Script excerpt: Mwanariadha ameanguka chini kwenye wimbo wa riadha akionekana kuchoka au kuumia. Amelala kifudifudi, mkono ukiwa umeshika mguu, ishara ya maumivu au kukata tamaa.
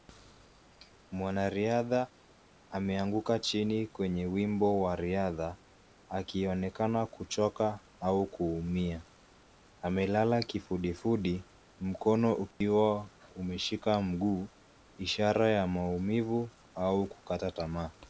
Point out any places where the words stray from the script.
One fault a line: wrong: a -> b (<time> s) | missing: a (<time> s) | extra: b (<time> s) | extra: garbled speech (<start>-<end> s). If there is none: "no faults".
no faults